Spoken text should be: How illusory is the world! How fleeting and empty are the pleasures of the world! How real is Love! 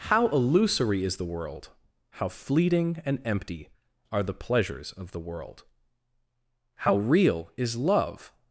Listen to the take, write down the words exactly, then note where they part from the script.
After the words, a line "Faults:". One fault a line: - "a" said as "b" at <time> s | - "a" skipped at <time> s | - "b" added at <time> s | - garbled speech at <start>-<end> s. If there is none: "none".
How illusory is the world! How fleeting and empty are the pleasures of the world! How real is Love!
Faults:
none